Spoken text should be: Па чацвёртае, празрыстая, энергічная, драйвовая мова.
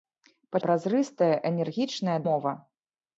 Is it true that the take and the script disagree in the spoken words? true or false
true